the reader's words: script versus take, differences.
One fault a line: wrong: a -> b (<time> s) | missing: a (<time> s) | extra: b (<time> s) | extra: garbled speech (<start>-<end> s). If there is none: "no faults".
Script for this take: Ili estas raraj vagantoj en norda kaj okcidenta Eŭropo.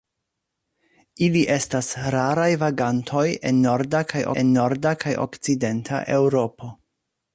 extra: en norda kaj (4.4 s)